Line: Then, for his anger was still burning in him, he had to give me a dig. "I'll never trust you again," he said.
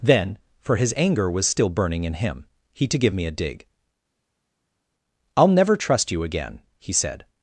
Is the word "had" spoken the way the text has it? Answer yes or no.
no